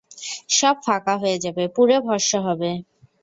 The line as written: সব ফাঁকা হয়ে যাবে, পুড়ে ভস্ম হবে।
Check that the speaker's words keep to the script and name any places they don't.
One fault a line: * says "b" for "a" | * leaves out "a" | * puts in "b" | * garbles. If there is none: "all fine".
all fine